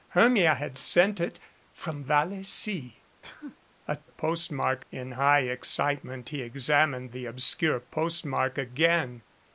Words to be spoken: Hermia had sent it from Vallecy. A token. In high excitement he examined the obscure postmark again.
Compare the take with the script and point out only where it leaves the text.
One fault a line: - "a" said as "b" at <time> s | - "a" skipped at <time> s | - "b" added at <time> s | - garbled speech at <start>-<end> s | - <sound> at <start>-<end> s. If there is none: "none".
- sneeze at 3.2-3.6 s
- "token" said as "postmark" at 4.1 s